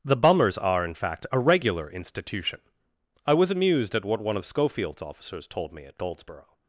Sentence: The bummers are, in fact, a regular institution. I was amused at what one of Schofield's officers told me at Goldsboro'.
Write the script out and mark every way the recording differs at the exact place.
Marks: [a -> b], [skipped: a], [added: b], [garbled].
The bummers are, in fact, a regular institution. I was amused at what one of Schofield's officers told me at Goldsboro'.